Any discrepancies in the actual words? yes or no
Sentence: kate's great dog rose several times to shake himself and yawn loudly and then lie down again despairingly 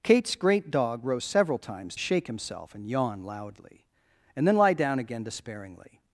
yes